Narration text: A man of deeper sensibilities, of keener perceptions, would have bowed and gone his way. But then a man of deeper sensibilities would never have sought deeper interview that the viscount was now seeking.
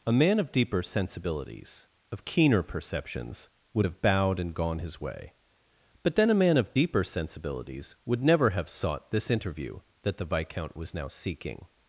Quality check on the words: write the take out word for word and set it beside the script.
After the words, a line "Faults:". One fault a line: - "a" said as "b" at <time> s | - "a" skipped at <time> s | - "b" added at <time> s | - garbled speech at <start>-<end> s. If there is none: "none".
A man of deeper sensibilities, of keener perceptions, would have bowed and gone his way. But then a man of deeper sensibilities would never have sought this interview that the viscount was now seeking.
Faults:
- "deeper" said as "this" at 9.1 s